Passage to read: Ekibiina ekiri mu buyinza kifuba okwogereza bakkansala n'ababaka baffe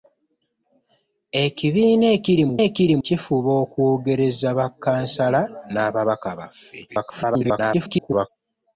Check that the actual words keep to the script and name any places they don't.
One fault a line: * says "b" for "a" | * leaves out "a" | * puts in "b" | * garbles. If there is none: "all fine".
* says "ekiri" for "buyinza"
* garbles